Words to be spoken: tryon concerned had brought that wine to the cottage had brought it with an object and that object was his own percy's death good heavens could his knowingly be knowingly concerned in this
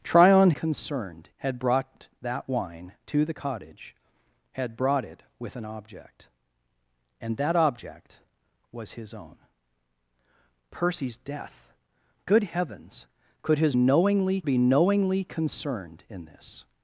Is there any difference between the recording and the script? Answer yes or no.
no